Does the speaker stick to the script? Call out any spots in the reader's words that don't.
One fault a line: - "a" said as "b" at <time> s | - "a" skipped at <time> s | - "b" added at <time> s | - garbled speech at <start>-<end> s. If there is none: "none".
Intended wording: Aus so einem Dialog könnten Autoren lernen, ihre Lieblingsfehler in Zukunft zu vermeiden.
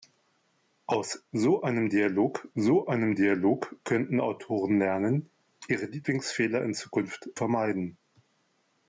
- "so einem Dialog" added at 2.5 s
- "zu" skipped at 7.3 s